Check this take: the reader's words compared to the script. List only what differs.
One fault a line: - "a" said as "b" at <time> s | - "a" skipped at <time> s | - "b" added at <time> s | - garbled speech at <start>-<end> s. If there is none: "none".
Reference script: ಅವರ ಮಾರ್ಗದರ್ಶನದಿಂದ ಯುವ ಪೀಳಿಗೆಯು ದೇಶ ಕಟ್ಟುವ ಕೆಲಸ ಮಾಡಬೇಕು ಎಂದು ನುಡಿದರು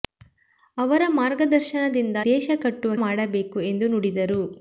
- "ಯುವ ಪೀಳಿಗೆಯು" skipped at 2.2 s
- "ಕೆಲಸ" skipped at 2.9 s